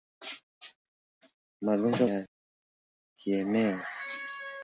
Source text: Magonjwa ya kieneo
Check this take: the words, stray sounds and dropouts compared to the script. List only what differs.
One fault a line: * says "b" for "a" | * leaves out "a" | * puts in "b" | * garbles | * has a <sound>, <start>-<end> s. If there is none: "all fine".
all fine